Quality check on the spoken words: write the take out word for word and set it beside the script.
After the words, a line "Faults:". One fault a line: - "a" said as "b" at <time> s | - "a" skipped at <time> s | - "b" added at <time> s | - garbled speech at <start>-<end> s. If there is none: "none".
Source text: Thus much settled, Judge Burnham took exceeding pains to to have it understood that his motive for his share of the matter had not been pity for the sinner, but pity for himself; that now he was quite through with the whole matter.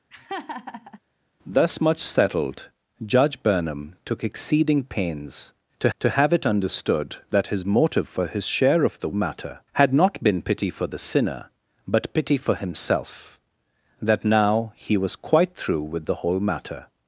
Thus much settled, Judge Burnham took exceeding pains to to have it understood that his motive for his share of the matter had not been pity for the sinner, but pity for himself; that now he was quite through with the whole matter.
Faults:
none